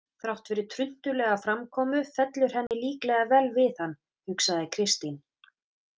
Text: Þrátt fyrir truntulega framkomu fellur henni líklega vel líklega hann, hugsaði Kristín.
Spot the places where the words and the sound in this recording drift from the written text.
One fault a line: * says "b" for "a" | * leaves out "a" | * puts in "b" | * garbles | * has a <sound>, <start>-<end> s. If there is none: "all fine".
* has a dropout, 2.7-2.7 s
* says "við" for "líklega"